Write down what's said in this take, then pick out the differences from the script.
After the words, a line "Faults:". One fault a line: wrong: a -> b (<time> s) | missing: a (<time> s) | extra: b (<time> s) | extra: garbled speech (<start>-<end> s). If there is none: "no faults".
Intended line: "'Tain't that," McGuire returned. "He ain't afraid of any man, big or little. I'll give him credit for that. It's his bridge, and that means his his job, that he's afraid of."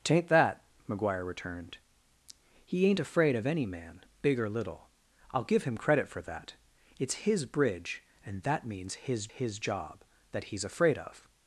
"'Tain't that," McGuire returned. "He ain't afraid of any man, big or little. I'll give him credit for that. It's his bridge, and that means his his job, that he's afraid of."
Faults:
no faults